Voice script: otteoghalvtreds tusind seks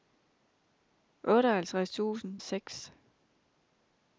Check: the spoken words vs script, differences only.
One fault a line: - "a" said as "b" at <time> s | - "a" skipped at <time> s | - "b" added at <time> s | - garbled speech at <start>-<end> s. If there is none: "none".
none